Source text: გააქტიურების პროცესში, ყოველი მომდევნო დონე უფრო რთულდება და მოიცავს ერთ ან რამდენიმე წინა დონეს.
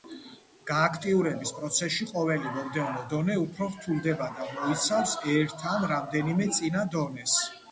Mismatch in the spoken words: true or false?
false